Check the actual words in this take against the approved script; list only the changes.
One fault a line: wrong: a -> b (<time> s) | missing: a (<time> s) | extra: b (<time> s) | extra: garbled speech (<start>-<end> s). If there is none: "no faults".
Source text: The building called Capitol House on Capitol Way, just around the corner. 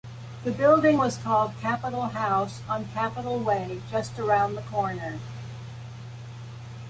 extra: was (0.9 s)